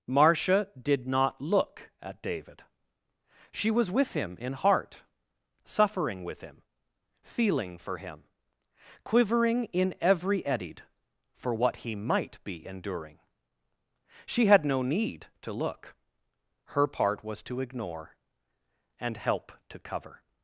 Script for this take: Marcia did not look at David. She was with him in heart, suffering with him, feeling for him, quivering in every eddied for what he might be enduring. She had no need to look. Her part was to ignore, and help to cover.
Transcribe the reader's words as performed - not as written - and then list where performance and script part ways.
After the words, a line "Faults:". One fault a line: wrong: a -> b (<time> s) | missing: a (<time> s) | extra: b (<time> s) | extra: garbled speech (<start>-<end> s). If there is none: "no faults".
Marcia did not look at David. She was with him in heart, suffering with him, feeling for him, quivering in every eddied for what he might be enduring. She had no need to look. Her part was to ignore, and help to cover.
Faults:
no faults